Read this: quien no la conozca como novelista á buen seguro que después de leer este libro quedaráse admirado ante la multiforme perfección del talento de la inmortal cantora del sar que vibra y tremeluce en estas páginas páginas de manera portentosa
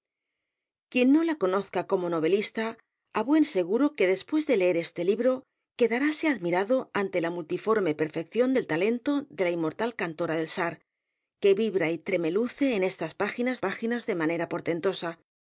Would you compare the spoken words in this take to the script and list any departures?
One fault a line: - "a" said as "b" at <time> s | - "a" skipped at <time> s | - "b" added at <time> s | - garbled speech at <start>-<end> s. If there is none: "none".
none